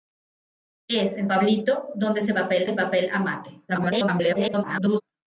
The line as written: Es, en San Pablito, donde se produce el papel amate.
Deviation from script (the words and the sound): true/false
true